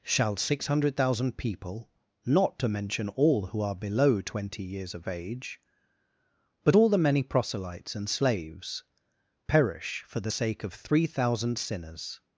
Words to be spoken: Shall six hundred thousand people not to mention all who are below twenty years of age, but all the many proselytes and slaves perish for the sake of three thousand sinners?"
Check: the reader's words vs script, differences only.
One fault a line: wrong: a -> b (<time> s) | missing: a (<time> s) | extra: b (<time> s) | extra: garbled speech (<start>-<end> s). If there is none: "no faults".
no faults